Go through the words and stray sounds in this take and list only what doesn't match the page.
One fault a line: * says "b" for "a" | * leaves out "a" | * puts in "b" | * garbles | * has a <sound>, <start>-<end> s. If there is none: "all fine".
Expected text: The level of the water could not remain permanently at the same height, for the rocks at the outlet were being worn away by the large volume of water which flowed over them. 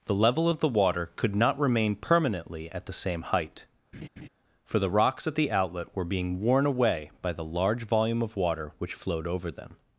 * has a laugh, 3.9-4.3 s